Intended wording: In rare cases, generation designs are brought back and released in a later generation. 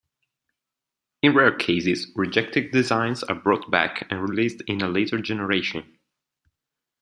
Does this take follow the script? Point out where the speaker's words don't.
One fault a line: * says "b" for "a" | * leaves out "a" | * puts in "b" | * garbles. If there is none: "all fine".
* says "rejected" for "generation"